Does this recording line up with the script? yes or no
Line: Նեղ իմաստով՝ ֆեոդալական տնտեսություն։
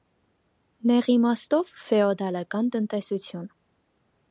yes